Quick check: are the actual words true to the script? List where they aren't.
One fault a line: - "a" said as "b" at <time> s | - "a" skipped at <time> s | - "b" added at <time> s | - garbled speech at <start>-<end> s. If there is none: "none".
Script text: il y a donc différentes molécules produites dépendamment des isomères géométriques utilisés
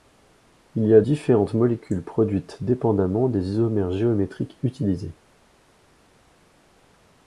- "donc" skipped at 1.0 s